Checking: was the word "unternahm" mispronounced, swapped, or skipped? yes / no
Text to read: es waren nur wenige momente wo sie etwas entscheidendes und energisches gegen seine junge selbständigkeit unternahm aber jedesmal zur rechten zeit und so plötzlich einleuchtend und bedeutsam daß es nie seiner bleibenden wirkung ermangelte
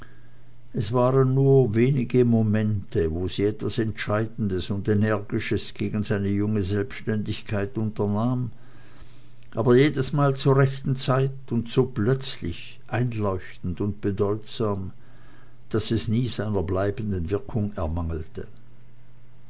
no